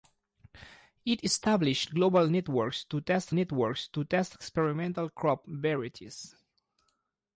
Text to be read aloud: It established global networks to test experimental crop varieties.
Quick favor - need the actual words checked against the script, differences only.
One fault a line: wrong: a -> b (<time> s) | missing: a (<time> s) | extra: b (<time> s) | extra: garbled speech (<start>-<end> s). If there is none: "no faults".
extra: networks to test (3.3 s)